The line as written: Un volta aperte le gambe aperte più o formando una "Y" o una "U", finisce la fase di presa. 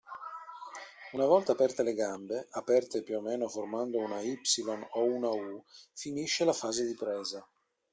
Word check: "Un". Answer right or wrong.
wrong